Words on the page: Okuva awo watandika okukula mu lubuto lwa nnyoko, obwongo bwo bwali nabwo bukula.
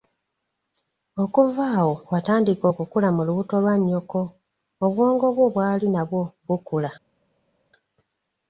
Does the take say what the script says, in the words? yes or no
yes